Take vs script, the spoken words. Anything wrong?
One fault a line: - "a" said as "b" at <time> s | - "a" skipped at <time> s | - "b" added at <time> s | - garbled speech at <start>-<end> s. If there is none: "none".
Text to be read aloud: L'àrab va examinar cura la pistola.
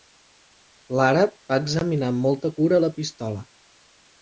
- "amb molta" added at 2.1 s